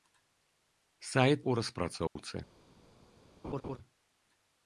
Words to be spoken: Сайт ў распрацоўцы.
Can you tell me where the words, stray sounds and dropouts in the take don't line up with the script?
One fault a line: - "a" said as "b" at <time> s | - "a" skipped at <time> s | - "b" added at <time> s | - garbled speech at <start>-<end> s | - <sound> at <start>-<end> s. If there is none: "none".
- dropout at 2.1-2.2 s
- laugh at 3.4-3.8 s